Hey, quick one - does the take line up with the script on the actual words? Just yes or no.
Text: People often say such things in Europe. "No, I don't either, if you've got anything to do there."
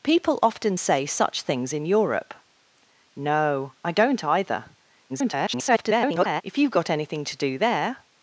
no